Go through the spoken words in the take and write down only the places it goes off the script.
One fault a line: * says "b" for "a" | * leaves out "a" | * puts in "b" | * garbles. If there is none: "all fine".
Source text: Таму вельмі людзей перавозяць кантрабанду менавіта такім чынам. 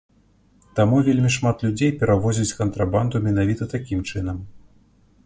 * puts in "шмат"